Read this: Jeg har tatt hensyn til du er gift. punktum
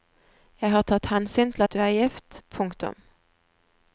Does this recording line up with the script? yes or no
no